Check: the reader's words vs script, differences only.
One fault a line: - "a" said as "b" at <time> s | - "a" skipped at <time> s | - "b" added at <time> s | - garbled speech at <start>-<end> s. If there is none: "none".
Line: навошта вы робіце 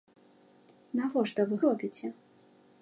none